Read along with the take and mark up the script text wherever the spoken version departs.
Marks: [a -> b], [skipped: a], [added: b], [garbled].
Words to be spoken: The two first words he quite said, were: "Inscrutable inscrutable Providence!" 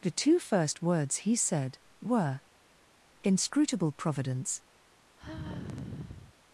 The two first words he [skipped: quite] said, were: "Inscrutable [skipped: inscrutable] Providence!"